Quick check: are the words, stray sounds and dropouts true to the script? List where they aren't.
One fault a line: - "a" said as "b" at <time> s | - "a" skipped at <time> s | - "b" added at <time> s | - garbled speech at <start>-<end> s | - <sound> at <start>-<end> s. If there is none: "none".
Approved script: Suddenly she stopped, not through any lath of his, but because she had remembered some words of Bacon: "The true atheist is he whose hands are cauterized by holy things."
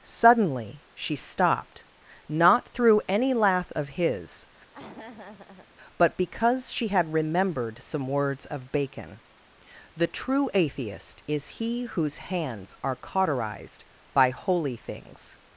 - laugh at 4.7-5.7 s